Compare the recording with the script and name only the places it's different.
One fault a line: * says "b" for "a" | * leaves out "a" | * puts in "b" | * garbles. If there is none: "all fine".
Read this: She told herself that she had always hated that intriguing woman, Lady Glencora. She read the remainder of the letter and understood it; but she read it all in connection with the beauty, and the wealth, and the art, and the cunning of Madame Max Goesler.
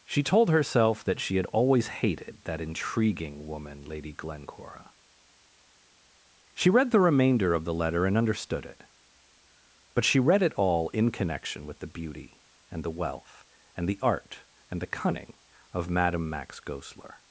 all fine